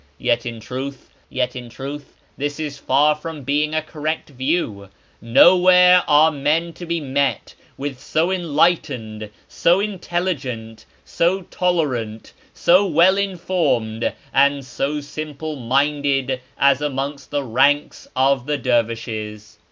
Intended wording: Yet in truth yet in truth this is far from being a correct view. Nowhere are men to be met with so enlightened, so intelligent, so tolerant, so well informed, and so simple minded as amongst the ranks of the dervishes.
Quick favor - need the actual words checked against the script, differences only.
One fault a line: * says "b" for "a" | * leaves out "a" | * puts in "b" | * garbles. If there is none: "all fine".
all fine